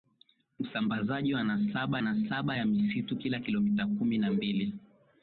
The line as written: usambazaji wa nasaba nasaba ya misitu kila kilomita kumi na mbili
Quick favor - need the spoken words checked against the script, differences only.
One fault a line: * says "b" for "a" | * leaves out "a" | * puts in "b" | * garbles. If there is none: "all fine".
all fine